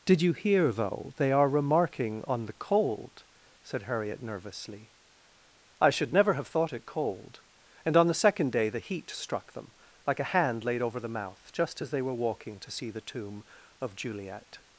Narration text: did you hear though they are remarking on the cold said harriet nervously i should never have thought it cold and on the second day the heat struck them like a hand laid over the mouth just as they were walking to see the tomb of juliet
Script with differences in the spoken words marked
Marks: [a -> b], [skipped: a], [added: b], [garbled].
did you hear though they are remarking on the cold said harriet nervously i should never have thought it cold and on the second day the heat struck them like a hand laid over the mouth just as they were walking to see the tomb of juliet